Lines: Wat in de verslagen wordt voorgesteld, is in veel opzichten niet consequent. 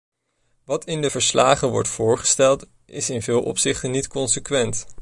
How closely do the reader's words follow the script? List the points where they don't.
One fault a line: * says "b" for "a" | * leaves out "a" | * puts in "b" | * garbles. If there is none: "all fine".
all fine